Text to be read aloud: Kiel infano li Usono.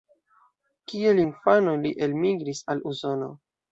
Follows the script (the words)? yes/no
no